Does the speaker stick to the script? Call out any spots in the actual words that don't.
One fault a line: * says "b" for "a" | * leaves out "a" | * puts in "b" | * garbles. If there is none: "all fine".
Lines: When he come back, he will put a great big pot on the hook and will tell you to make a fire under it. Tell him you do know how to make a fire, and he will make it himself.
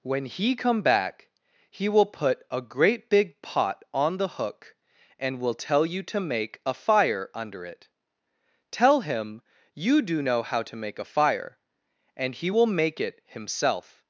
all fine